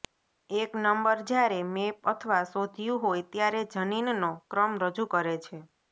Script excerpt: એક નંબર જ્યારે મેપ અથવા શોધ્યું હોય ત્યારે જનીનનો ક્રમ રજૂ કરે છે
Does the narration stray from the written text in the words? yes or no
no